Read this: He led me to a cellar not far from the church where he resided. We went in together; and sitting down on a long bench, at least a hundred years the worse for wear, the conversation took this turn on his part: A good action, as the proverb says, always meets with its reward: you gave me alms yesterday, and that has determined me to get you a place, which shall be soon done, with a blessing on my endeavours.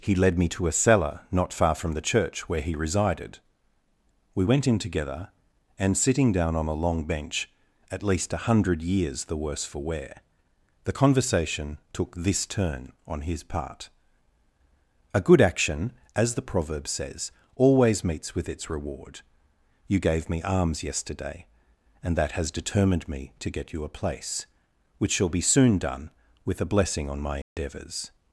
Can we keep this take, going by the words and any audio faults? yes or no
no